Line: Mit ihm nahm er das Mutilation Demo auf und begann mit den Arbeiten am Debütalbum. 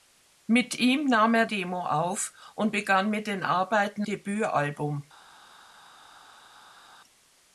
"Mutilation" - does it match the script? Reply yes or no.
no